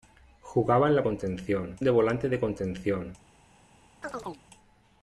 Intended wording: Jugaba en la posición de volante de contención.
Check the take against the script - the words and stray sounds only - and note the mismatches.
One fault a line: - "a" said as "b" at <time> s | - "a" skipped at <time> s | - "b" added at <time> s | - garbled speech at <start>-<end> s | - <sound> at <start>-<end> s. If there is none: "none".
- "posición" said as "contención" at 1.0 s
- chirp at 4.0-4.4 s